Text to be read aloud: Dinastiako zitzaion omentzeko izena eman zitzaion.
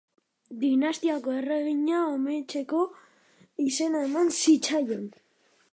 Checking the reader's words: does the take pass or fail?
fail